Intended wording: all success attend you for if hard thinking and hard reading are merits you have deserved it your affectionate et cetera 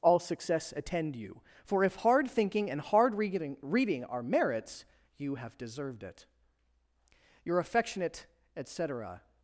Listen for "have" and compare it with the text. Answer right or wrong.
right